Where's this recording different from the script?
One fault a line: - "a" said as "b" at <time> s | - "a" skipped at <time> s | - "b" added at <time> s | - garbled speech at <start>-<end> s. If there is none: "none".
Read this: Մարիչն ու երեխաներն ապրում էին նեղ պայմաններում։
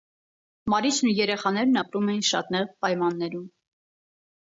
- "շատ" added at 2.3 s